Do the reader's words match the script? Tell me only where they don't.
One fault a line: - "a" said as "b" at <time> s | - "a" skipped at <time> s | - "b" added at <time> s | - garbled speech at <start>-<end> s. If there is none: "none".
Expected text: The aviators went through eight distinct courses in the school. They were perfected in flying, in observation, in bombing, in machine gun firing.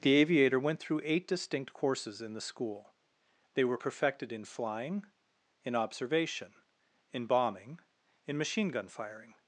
- "aviators" said as "aviator" at 0.1 s